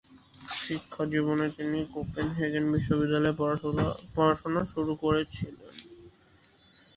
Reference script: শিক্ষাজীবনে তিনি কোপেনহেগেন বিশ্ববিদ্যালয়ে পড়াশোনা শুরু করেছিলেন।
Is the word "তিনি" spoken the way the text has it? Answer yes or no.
yes